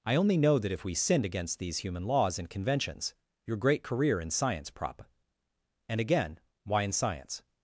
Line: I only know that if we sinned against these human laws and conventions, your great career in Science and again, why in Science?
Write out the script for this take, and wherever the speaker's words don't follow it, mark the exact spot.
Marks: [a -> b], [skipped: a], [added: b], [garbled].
I only know that if we sinned against these human laws and conventions, your great career in Science [added: prop] and again, why in Science?